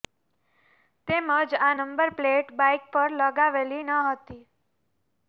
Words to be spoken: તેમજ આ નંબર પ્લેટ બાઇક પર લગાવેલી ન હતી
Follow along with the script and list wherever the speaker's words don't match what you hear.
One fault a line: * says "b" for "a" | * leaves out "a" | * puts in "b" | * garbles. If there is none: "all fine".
all fine